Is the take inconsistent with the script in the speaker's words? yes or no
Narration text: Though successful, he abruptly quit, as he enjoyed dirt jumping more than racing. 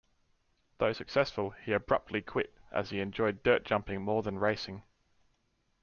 no